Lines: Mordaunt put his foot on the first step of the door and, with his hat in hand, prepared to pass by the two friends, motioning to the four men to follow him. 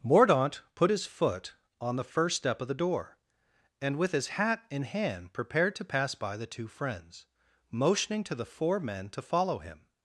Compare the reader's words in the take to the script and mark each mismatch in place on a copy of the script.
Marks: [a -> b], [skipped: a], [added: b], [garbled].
Mordaunt put his foot on the first step of the door and, with his hat in hand, prepared to pass by the two friends, motioning to the four men to follow him.